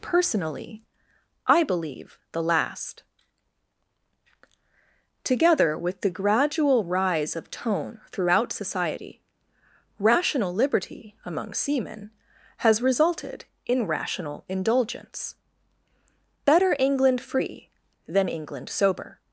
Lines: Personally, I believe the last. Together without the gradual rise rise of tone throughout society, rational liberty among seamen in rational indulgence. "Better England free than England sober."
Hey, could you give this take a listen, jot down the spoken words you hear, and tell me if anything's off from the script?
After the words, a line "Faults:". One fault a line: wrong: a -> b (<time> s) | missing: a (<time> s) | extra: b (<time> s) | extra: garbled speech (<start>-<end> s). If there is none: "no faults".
Personally, I believe the last. Together with the gradual rise of tone throughout society, rational liberty among seamen has resulted in rational indulgence. "Better England free than England sober."
Faults:
wrong: without -> with (5.8 s)
missing: rise (7.3 s)
extra: has resulted (12.6 s)